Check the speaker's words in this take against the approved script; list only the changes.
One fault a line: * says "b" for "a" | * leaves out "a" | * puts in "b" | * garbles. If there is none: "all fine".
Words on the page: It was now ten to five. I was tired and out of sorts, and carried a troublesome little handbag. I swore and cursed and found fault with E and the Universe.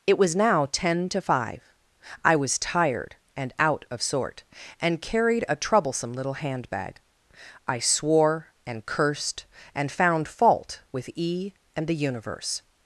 * says "sort" for "sorts"